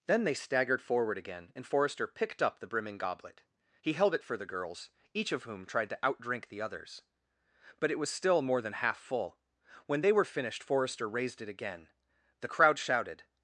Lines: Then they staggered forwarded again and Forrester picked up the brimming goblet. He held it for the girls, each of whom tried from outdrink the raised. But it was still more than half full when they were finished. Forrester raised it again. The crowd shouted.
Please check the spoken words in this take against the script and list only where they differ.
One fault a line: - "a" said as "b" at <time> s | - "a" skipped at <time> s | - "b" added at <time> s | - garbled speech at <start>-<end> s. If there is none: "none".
- "forwarded" said as "forward" at 0.8 s
- "from" said as "to" at 5.9 s
- "raised" said as "others" at 6.6 s